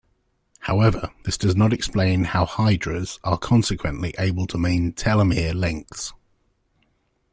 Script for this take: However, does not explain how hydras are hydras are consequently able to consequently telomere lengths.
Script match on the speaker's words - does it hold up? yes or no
no